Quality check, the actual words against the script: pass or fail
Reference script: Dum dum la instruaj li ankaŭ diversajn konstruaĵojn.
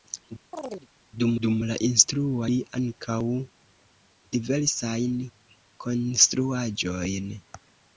pass